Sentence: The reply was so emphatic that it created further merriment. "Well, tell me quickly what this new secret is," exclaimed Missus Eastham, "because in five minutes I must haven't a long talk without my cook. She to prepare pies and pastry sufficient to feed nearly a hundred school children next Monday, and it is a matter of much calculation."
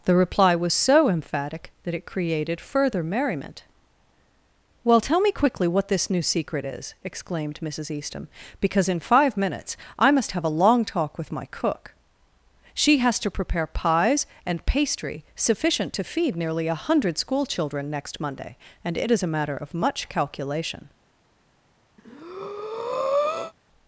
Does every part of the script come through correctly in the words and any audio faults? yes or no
no